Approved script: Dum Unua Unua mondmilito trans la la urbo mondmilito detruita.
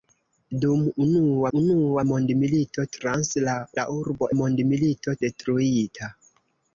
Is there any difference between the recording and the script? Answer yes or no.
no